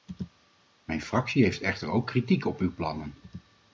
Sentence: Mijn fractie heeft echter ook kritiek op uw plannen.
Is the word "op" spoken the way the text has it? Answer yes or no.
yes